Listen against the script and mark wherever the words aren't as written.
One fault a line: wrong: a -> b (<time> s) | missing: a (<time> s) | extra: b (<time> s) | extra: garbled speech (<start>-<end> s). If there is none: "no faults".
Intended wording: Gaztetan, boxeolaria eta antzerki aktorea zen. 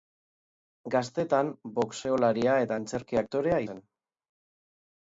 no faults